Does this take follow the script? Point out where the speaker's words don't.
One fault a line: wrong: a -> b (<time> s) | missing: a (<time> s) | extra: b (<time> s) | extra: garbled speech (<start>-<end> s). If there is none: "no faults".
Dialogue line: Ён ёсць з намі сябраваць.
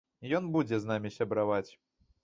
wrong: ёсць -> будзе (0.5 s)